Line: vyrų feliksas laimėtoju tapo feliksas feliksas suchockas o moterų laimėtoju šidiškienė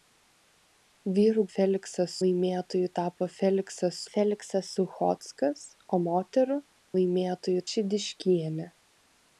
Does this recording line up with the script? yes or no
yes